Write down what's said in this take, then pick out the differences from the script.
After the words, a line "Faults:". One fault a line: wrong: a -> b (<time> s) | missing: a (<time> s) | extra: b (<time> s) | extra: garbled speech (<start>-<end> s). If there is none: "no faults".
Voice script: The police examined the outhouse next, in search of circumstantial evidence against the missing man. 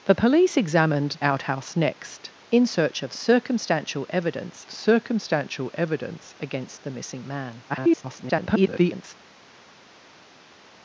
The police examined outhouse next, in search of circumstantial evidence circumstantial evidence against the missing man. [garbled]
Faults:
missing: the (1.2 s)
extra: circumstantial evidence (4.7 s)
extra: garbled speech (7.7-9.1 s)